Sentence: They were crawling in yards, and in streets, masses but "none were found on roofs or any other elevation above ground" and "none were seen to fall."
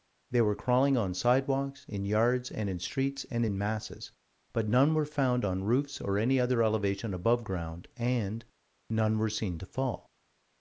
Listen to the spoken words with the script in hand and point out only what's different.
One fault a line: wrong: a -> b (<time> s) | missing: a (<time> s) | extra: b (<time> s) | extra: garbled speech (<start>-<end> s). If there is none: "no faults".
extra: on sidewalks (1.0 s)
extra: and in (3.3 s)